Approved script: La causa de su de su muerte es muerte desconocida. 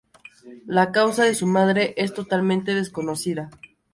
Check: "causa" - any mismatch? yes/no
no